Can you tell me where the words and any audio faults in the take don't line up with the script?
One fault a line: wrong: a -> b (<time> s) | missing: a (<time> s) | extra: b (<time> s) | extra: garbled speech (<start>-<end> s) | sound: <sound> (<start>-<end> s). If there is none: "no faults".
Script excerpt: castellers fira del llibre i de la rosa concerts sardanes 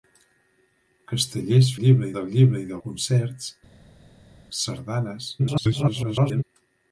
wrong: fira -> llibre (1.8 s)
missing: la rosa (2.8 s)
extra: garbled speech (5.4-6.4 s)